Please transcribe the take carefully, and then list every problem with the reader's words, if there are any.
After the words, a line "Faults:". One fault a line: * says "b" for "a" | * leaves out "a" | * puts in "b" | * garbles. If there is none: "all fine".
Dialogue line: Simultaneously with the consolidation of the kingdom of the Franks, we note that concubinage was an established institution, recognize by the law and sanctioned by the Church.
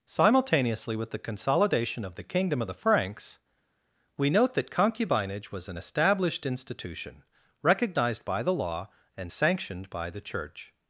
Simultaneously with the consolidation of the kingdom of the Franks, we note that concubinage was an established institution, recognized by the law and sanctioned by the Church.
Faults:
* says "recognized" for "recognize"